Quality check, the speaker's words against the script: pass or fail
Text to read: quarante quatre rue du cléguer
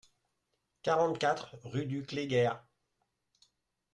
pass